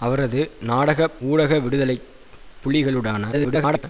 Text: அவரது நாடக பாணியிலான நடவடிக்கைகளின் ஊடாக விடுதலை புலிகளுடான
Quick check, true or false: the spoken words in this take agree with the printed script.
false